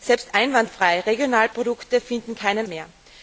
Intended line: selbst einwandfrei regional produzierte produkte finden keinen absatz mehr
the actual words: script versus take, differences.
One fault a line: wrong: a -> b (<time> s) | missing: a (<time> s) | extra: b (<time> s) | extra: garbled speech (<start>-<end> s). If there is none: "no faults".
missing: produzierte (1.5 s)
missing: absatz (2.7 s)